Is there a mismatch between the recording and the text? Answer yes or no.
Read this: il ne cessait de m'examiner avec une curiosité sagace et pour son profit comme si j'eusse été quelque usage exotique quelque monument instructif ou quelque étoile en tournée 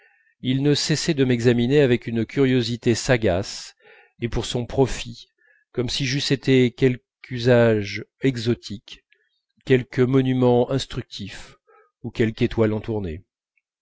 no